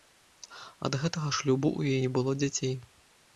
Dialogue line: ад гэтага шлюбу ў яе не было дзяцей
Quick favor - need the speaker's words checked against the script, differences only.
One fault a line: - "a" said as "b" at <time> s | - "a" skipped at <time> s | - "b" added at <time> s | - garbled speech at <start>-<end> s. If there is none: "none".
- "яе" skipped at 2.0 s